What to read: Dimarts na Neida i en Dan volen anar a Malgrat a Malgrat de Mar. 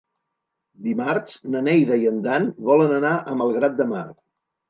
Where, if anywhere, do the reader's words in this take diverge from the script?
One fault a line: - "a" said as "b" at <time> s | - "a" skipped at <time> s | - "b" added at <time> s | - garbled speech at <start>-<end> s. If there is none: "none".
- "a Malgrat" skipped at 3.8 s